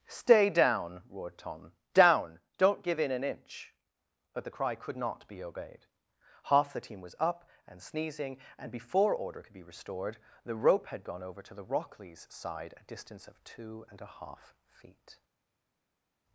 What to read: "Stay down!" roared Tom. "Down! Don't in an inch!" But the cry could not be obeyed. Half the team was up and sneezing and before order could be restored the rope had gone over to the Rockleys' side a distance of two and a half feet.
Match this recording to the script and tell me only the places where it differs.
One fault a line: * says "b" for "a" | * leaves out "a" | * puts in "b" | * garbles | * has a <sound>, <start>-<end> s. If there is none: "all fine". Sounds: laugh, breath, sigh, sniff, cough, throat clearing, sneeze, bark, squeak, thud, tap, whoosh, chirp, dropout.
* puts in "give"